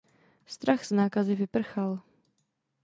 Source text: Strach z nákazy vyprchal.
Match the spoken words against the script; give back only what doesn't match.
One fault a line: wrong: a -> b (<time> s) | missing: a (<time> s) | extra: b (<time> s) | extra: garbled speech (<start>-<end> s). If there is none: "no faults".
no faults